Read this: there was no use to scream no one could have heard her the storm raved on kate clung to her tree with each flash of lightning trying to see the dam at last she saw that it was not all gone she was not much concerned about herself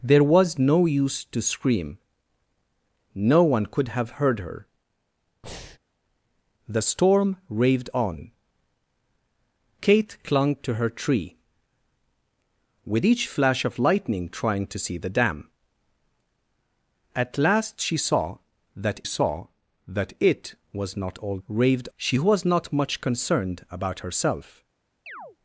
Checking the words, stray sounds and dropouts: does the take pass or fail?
fail